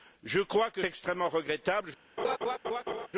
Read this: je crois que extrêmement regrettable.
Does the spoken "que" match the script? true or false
true